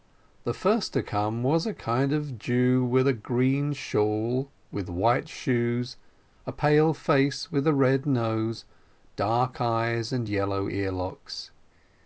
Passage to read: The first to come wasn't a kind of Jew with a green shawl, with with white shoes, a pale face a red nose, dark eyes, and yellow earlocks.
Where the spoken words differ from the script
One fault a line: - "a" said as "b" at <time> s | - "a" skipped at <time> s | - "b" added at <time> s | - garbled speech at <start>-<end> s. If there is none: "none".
- "wasn't" said as "was" at 1.4 s
- "with" skipped at 4.9 s
- "with" added at 7.5 s